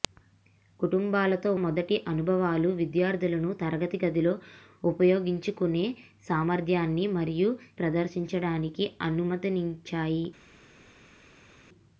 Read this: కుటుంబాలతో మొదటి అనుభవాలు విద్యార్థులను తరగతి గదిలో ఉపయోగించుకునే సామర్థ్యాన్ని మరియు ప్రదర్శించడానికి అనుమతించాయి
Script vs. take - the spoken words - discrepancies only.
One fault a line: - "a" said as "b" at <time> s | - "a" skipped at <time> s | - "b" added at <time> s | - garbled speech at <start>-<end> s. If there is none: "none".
none